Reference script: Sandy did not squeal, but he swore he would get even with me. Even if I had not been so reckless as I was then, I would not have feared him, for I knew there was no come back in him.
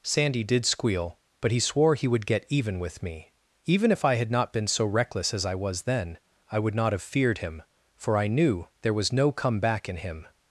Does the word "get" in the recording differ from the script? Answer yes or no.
no